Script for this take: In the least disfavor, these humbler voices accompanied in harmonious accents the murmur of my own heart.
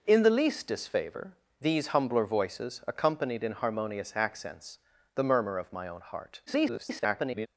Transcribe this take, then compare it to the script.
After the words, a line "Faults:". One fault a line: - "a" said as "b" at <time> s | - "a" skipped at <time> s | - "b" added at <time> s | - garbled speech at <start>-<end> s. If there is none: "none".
In the least disfavor, these humbler voices accompanied in harmonious accents the murmur of my own heart. [garbled]
Faults:
- garbled speech at 6.5-7.5 s